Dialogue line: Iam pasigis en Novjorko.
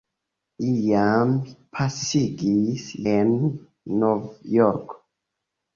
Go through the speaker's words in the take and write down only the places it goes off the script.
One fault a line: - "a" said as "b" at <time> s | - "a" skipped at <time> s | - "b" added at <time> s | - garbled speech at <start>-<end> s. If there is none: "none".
none